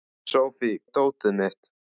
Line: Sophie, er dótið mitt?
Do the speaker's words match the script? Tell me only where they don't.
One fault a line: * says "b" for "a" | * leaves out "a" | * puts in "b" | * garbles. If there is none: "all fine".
all fine